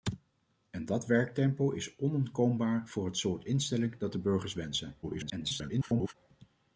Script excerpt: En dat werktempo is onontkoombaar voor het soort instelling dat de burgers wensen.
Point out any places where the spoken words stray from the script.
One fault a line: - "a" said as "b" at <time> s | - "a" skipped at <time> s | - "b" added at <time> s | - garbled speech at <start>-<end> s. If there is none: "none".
- garbled speech at 5.0-6.1 s